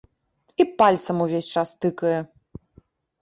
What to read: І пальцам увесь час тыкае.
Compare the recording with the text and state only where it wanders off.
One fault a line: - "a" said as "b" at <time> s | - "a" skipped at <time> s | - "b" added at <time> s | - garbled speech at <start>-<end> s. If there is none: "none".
none